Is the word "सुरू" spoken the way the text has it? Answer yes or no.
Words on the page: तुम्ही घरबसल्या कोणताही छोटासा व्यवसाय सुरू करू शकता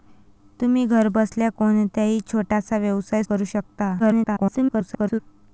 no